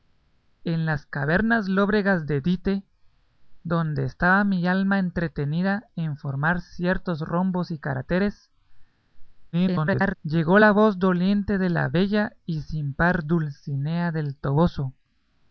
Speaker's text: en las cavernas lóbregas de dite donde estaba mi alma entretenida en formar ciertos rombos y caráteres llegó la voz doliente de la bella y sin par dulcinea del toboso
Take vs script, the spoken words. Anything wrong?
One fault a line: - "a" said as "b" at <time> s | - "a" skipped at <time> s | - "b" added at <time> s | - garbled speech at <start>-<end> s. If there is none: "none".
- garbled speech at 9.5-10.2 s